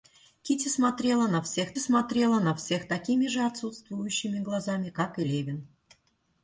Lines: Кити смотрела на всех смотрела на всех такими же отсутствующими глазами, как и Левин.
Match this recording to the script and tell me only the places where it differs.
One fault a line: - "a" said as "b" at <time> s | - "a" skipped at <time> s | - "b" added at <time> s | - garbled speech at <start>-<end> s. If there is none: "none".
none